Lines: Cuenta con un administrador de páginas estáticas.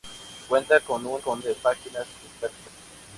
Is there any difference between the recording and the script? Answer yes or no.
yes